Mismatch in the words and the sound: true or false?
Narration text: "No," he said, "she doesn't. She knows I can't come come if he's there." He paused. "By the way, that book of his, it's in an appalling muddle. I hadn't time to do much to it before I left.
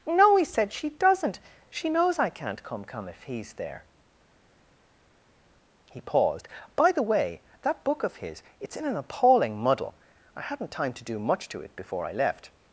false